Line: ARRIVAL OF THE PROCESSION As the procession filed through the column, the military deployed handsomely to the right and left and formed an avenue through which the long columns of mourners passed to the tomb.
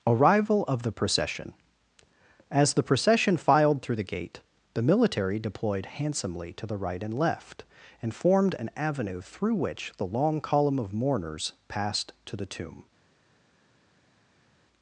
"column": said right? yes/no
no